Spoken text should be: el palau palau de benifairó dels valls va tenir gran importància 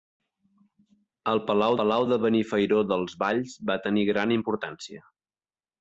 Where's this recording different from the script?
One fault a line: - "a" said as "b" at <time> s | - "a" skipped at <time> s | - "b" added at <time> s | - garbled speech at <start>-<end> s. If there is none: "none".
none